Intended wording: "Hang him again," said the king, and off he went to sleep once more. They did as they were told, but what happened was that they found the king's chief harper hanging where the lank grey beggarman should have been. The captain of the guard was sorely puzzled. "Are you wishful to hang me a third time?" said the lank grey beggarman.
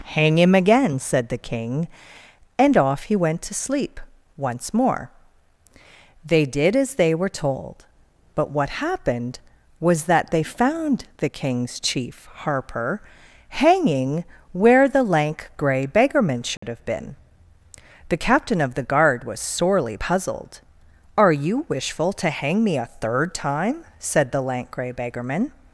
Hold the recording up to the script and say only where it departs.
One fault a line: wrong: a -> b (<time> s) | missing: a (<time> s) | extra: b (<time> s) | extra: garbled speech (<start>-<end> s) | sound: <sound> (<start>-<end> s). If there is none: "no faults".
sound: dropout (16.6-16.6 s)